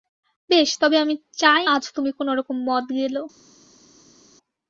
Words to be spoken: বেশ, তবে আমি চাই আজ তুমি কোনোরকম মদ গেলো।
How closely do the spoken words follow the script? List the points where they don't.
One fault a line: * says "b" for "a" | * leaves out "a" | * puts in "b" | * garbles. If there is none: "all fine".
all fine